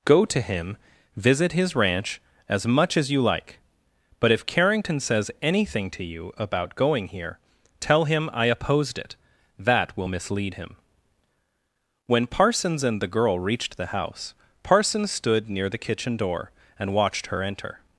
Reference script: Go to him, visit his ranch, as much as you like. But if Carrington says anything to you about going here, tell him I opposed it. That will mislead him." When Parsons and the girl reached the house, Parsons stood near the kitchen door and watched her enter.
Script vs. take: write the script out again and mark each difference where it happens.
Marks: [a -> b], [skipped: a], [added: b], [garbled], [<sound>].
Go to him, visit his ranch, as much as you like. But if Carrington says anything to you about going here, tell him I opposed it. That will mislead him." When Parsons and the girl reached the house, Parsons stood near the kitchen door and watched her enter.